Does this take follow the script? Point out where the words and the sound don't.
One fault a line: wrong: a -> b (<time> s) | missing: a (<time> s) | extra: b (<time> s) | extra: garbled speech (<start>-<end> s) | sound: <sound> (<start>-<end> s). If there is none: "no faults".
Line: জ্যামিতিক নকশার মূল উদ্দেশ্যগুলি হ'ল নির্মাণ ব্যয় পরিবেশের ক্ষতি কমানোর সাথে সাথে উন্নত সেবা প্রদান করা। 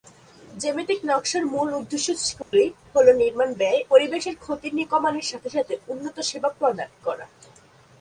sound: dropout (2.4-2.5 s)